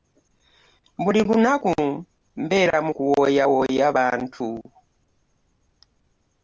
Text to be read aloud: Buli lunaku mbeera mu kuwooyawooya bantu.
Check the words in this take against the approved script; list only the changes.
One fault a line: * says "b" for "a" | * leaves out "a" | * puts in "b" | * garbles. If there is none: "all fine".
all fine